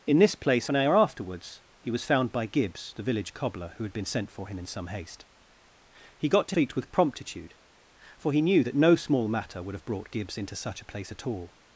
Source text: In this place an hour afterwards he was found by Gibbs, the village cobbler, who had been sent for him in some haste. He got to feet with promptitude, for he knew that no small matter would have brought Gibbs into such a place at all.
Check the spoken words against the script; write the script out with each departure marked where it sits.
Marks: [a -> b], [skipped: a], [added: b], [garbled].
In this place an hour afterwards he was found by Gibbs, the village cobbler, who had been sent for him in some haste. He got to feet with promptitude, for he knew that no small matter would have brought Gibbs into such a place at all.